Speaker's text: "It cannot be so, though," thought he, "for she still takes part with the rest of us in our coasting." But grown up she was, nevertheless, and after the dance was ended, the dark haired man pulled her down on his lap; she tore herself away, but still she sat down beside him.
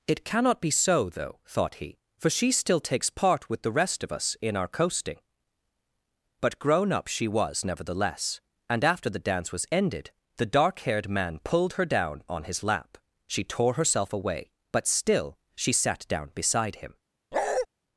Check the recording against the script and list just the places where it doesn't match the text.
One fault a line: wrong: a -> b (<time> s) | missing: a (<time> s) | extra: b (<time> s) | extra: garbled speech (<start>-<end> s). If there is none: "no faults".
no faults